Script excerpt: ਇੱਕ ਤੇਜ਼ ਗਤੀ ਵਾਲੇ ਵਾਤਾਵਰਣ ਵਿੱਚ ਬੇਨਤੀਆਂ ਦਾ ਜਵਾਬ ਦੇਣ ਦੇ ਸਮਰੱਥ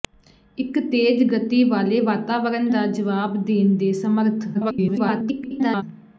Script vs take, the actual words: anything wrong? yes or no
yes